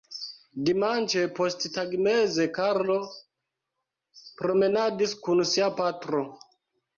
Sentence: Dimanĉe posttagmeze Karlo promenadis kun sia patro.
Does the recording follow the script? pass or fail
pass